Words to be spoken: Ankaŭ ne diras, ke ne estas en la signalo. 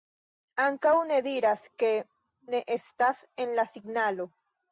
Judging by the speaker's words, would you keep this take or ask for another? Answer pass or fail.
pass